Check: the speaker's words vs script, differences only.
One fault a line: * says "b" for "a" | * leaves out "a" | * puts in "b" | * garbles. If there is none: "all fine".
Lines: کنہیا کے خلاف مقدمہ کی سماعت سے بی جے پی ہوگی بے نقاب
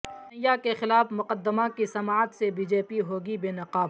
all fine